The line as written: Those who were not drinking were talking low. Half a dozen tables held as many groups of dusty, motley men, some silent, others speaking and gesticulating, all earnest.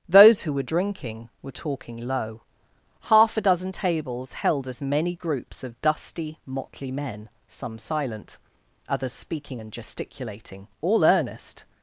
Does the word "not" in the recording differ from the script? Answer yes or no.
yes